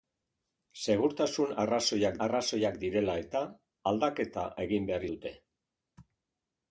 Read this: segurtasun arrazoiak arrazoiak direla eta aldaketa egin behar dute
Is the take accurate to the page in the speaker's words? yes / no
yes